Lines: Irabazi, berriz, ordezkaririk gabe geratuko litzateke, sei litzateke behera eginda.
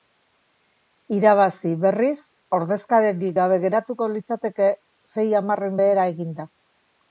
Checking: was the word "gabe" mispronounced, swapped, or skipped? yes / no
no